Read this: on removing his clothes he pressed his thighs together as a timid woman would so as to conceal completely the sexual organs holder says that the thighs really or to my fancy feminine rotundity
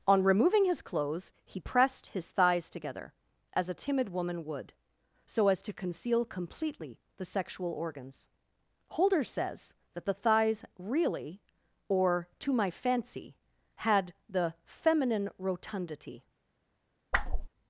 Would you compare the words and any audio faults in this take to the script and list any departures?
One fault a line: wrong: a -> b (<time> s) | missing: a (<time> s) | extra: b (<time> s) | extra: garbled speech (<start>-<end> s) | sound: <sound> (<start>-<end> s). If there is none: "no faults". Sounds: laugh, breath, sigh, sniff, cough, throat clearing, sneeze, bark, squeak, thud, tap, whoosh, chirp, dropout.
extra: had the (13.7 s)
sound: whoosh (17.1-17.5 s)